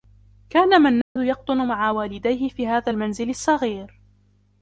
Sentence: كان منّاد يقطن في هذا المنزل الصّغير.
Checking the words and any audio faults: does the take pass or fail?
fail